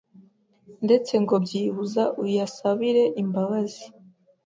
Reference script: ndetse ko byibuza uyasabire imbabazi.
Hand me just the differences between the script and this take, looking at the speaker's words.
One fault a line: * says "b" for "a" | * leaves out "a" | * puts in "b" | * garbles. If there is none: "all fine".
* says "ngo" for "ko"